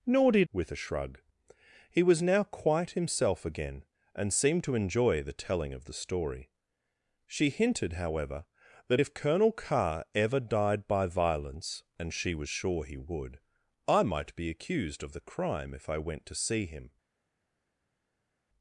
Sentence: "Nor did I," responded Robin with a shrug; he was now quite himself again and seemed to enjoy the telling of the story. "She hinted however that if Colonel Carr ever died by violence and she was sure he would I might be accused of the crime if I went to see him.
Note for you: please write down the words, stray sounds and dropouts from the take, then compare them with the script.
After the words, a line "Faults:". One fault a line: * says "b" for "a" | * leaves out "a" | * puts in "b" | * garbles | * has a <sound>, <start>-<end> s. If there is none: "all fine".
"Nor did with a shrug; he was now quite himself again and seemed to enjoy the telling of the story. "She hinted however that if Colonel Carr ever died by violence and she was sure he would I might be accused of the crime if I went to see him.
Faults:
* leaves out "I responded Robin"